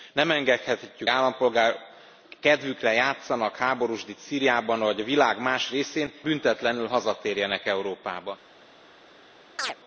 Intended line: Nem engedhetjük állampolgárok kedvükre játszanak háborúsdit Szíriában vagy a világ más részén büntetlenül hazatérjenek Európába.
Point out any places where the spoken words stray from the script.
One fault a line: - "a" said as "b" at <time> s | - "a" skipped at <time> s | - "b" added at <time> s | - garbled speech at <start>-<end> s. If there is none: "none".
none